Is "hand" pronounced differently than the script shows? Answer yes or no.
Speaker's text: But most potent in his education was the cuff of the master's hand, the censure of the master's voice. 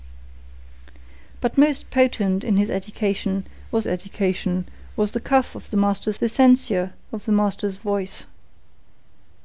yes